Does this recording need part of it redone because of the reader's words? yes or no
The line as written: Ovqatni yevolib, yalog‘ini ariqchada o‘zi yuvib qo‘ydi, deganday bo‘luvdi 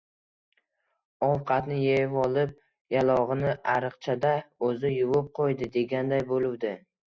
no